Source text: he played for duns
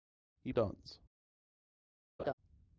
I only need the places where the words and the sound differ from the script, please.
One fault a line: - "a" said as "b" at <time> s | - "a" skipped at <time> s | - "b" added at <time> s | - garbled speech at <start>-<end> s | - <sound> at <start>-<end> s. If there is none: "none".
- "played for" skipped at 0.5 s
- laugh at 2.2-2.3 s